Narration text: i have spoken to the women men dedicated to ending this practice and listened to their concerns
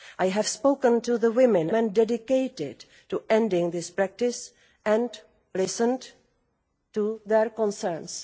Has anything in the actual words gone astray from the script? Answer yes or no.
no